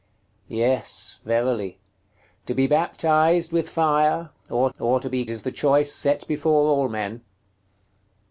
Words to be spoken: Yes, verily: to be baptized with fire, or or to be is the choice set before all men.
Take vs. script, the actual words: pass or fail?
pass